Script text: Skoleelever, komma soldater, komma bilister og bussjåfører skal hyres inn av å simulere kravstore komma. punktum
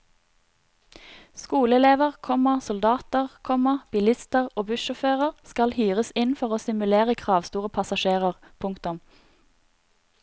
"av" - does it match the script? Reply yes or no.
no